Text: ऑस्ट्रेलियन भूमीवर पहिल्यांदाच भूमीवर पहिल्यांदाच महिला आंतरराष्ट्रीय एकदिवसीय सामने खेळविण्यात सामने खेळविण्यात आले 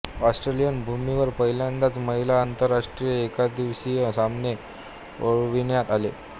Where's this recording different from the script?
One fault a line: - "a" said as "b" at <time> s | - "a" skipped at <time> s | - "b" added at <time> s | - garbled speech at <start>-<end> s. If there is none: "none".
- "भूमीवर पहिल्यांदाच" skipped at 2.0 s
- "सामने खेळविण्यात" skipped at 5.9 s